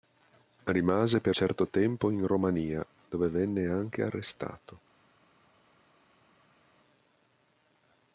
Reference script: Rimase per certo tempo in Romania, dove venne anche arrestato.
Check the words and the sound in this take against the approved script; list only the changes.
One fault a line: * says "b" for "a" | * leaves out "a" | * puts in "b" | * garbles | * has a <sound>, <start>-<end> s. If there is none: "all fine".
all fine